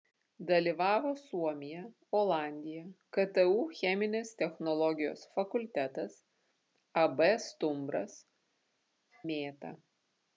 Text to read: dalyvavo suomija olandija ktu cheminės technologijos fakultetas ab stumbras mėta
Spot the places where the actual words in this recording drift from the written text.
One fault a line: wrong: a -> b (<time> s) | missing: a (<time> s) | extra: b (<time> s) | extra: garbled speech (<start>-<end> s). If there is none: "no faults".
no faults